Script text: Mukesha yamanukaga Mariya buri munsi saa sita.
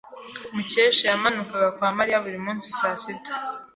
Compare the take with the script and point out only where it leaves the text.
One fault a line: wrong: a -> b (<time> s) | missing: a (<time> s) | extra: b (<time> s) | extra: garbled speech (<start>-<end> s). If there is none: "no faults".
extra: kwa (1.8 s)